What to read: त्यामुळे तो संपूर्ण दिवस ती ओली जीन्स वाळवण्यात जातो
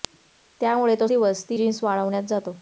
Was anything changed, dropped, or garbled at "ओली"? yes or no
yes